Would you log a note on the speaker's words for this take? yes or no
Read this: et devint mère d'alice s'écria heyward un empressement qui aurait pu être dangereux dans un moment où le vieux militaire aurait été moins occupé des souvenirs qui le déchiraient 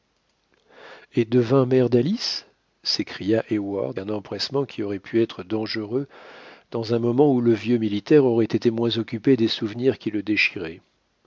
no